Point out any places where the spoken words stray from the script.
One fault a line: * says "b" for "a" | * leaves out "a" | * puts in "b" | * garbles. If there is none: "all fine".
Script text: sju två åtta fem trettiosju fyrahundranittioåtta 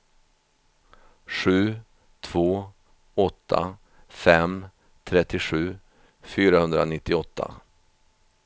all fine